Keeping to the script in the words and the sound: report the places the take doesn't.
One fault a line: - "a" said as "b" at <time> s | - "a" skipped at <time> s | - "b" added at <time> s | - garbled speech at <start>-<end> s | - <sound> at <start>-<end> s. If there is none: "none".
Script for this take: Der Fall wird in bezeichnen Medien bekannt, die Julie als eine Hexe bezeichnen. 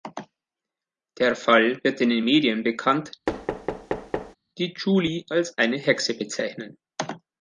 - "bezeichnen" said as "den" at 2.1 s
- thud at 3.3-4.4 s